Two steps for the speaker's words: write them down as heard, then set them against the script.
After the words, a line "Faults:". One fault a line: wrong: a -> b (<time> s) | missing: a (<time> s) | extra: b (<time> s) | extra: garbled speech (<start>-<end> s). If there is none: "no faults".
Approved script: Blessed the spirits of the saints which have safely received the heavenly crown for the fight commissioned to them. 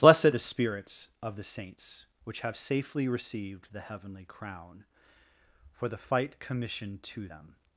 Blessed the spirits of the saints which have safely received the heavenly crown for the fight commissioned to them.
Faults:
no faults